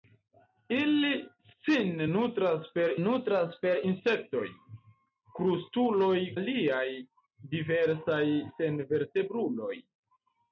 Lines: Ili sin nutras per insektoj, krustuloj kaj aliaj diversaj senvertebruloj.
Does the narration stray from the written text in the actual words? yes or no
yes